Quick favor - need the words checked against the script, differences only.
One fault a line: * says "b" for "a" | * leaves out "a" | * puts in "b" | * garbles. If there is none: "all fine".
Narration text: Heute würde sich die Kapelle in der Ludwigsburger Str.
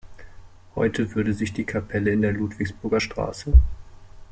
all fine